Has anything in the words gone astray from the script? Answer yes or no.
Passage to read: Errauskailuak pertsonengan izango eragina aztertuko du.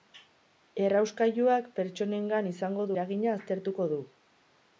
no